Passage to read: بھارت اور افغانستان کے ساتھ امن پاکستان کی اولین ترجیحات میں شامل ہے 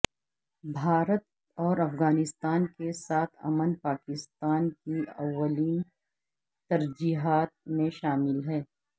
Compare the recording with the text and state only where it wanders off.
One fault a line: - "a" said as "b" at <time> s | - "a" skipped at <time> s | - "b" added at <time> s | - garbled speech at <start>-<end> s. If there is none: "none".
none